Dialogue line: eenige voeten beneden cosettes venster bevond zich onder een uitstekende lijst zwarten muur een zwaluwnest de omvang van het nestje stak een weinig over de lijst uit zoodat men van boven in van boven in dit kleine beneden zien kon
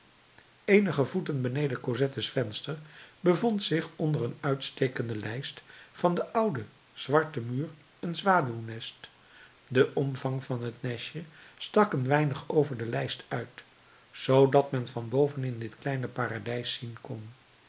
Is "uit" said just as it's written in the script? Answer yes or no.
yes